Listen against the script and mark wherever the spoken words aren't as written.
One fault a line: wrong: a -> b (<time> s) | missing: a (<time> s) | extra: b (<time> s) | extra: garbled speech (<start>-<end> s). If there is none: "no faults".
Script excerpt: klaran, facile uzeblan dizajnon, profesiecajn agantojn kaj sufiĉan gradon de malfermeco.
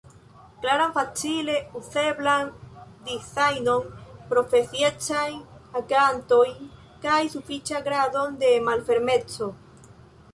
no faults